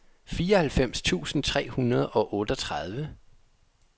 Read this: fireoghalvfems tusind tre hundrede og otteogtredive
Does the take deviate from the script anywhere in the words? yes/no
no